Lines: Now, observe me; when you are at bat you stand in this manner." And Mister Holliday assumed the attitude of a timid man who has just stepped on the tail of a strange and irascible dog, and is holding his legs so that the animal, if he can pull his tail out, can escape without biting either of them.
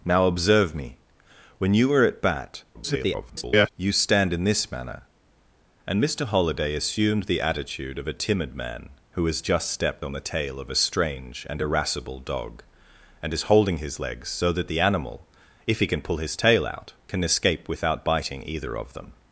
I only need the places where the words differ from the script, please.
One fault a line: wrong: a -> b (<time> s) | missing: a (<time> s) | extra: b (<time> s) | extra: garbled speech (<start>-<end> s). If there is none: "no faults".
extra: garbled speech (2.7-3.7 s)